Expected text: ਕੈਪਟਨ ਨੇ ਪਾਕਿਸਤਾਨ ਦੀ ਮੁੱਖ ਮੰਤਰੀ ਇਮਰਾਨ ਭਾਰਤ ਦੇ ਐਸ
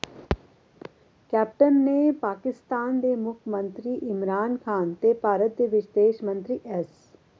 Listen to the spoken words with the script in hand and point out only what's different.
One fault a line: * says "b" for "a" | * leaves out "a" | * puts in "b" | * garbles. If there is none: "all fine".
* says "ਦੇ" for "ਦੀ"
* puts in "ਖ਼ਾਨ ਤੇ"
* puts in "ਵਿਦੇਸ਼ ਮੰਤਰੀ"